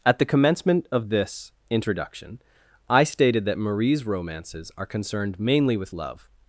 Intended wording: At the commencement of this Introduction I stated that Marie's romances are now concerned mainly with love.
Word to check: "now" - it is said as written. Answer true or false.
false